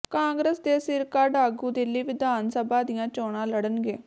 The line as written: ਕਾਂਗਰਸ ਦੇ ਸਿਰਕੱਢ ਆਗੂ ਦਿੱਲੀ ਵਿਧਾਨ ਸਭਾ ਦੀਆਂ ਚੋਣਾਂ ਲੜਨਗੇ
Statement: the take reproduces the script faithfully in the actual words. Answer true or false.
true